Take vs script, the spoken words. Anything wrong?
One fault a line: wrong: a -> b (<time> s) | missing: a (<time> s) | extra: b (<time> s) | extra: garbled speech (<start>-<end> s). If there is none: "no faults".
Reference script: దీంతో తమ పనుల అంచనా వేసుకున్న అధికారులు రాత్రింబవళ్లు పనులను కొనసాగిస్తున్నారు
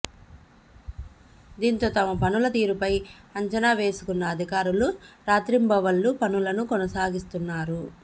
extra: తీరుపై (2.5 s)